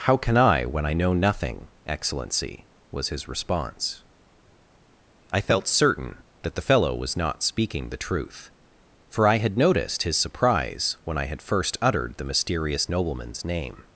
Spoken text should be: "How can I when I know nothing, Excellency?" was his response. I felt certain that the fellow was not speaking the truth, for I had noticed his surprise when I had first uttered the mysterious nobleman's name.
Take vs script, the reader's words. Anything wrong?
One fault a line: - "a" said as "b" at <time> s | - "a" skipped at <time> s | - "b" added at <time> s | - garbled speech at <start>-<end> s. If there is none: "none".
none